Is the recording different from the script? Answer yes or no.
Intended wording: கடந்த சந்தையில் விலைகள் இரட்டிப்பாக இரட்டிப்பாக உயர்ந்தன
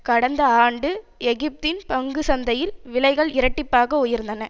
yes